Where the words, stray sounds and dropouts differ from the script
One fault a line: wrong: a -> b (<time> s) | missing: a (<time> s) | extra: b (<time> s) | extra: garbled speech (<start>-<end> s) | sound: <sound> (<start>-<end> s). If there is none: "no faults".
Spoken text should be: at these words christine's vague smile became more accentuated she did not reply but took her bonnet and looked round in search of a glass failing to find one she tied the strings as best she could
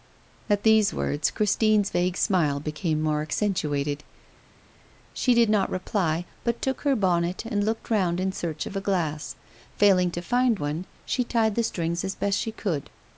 no faults